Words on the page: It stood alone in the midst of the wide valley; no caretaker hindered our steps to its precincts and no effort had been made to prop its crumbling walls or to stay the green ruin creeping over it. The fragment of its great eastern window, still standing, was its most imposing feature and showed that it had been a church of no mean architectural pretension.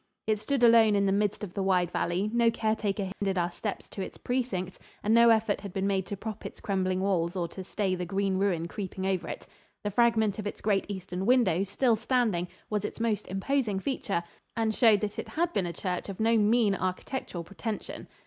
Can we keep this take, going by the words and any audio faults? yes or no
no